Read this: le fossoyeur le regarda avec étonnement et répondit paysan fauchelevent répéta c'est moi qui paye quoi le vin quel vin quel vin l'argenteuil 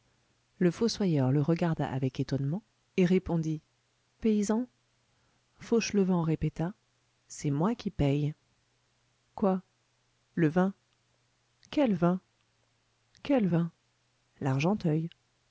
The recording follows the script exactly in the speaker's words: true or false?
true